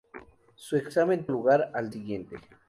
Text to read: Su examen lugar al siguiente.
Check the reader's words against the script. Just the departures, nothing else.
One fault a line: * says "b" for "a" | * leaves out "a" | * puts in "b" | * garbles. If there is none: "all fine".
all fine